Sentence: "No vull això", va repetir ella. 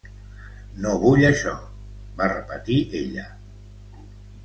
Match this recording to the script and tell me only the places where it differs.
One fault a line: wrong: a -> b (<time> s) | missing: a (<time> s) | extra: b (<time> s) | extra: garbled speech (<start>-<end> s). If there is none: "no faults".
no faults